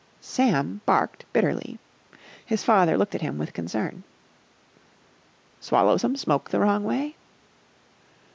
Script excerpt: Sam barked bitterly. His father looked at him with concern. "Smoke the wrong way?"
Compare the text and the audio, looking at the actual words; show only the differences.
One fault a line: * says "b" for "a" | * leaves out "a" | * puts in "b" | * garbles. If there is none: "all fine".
* puts in "Swallow some"